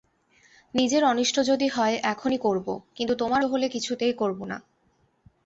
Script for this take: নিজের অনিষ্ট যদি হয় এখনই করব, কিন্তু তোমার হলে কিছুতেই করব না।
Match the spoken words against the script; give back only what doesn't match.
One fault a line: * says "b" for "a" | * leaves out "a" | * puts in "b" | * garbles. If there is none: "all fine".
all fine